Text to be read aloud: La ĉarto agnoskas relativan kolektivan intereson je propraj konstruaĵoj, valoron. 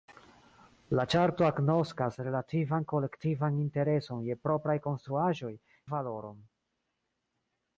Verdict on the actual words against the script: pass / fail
pass